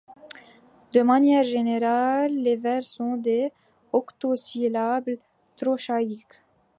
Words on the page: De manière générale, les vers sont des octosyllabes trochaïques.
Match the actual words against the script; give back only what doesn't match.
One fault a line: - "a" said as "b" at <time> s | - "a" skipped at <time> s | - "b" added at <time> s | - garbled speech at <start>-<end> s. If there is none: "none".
none